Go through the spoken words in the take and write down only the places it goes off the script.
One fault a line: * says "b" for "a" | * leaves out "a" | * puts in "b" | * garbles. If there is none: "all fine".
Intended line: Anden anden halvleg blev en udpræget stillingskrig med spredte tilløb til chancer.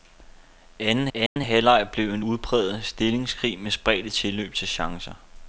all fine